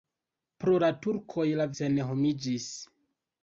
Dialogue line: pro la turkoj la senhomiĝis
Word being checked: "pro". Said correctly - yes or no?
yes